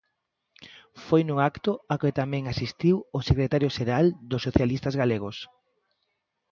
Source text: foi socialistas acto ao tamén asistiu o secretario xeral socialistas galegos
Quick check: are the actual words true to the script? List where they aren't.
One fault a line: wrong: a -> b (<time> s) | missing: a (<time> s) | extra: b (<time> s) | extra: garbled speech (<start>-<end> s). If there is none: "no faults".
wrong: socialistas -> nun (1.2 s)
extra: que (2.0 s)
extra: dos (4.3 s)